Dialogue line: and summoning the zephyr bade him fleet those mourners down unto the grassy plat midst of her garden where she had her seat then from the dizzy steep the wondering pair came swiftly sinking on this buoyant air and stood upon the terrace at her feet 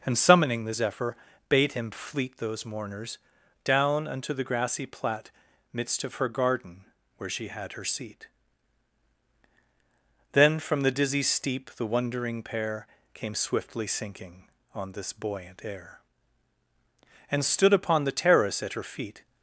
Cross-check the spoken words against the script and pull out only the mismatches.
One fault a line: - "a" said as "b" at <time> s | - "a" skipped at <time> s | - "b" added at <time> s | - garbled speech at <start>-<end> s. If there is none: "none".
none